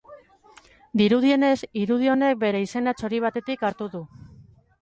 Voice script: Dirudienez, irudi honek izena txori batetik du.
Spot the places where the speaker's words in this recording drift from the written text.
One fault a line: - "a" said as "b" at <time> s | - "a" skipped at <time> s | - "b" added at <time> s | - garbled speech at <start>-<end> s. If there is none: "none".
- "bere" added at 2.5 s
- "hartu" added at 3.7 s